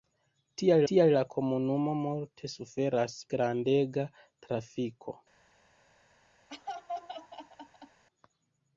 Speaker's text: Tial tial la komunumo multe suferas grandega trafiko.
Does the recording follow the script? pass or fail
pass